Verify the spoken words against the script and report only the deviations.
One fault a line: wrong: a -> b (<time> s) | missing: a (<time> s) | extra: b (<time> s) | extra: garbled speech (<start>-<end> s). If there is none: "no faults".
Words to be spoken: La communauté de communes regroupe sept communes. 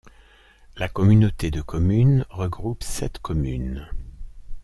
no faults